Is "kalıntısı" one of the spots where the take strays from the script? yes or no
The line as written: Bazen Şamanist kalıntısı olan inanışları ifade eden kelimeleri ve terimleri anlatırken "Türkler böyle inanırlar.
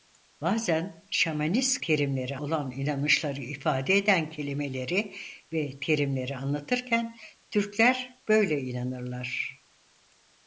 yes